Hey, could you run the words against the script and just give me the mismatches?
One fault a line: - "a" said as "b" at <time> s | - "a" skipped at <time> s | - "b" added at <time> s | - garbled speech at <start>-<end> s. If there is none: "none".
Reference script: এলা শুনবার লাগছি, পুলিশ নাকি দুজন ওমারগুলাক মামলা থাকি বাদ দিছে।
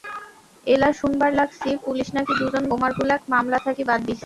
none